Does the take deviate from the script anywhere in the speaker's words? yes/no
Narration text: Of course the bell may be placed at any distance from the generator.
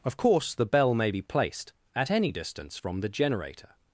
no